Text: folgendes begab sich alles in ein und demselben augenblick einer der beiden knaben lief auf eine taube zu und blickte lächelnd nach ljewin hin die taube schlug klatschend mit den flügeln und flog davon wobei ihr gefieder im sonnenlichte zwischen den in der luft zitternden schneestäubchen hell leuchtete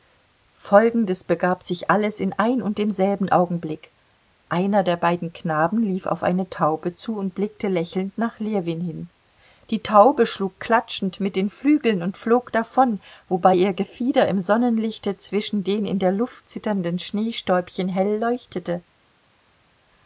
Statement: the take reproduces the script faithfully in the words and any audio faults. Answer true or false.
true